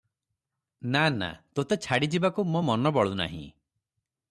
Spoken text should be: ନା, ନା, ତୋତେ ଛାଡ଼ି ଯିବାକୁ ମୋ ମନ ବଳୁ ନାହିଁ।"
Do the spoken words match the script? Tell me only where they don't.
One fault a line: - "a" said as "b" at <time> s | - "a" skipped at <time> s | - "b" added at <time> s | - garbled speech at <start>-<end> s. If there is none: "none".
none